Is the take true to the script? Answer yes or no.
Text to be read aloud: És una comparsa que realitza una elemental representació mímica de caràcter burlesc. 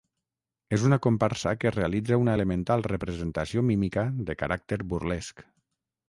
yes